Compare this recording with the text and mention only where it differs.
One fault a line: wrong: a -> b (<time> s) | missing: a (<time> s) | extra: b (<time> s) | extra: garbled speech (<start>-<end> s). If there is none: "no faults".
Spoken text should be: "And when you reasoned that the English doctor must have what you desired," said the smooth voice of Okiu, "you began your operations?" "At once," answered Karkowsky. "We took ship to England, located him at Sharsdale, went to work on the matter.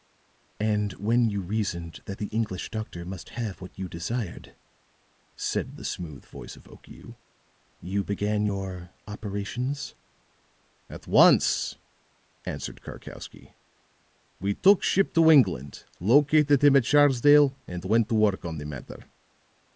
extra: and (17.7 s)